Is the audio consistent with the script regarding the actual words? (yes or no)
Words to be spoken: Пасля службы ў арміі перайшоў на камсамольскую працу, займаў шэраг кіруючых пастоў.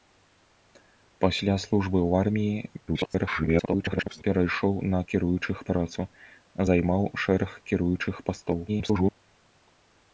no